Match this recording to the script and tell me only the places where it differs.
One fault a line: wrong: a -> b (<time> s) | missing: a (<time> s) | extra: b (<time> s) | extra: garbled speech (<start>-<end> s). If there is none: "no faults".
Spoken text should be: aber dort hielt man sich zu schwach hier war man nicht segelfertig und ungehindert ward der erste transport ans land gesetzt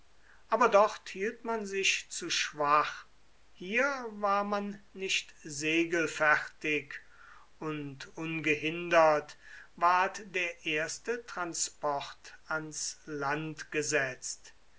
no faults